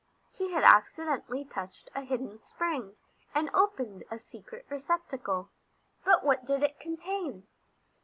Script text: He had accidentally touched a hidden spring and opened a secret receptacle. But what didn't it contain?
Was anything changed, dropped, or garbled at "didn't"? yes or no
yes